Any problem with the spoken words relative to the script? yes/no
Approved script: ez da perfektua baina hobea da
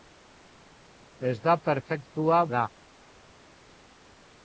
yes